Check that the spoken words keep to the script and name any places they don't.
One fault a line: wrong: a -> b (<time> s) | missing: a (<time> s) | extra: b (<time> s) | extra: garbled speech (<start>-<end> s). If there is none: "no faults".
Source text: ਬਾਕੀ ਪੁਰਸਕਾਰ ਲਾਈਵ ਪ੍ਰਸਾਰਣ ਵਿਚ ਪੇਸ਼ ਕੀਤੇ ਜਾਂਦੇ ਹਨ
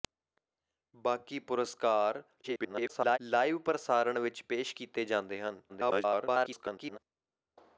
extra: garbled speech (2.4-3.2 s)
extra: garbled speech (5.7-7.0 s)